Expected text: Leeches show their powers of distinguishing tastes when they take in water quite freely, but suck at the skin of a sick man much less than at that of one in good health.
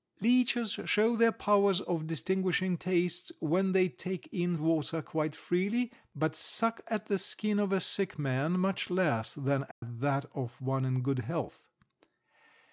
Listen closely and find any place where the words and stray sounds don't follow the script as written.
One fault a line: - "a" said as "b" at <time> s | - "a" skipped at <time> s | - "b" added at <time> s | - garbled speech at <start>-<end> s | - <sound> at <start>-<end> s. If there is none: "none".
- dropout at 9.7-9.8 s